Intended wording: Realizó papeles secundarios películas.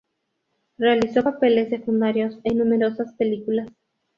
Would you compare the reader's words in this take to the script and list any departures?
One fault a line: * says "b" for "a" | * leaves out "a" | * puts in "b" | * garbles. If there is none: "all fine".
* puts in "en numerosas"